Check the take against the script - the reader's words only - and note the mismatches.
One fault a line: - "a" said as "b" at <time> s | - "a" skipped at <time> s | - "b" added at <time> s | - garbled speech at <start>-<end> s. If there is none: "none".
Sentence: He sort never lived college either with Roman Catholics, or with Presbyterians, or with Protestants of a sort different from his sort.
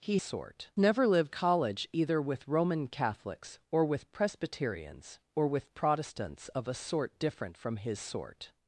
none